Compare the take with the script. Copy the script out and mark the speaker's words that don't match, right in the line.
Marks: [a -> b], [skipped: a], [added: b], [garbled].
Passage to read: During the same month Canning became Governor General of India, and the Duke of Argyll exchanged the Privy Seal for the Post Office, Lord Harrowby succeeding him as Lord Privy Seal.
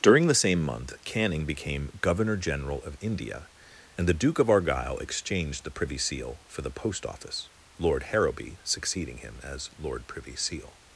During the same month Canning became Governor General of India, and the Duke of Argyll exchanged the Privy Seal for the Post Office, Lord Harrowby succeeding him as Lord Privy Seal.